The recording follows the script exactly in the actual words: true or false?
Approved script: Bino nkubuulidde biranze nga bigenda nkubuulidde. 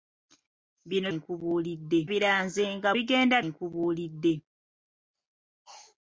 true